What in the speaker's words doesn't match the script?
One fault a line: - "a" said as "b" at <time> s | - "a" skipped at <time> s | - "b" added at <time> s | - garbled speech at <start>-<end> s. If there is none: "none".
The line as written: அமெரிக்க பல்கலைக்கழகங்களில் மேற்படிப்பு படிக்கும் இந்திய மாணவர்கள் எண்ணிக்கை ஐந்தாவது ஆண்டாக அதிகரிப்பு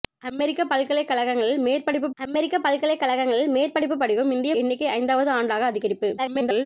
- "அமெரிக்க பல்கலைக்கழகங்களில் மேற்படிப்பு" added at 2.2 s
- "மாணவர்கள்" skipped at 4.6 s
- garbled speech at 6.2-6.7 s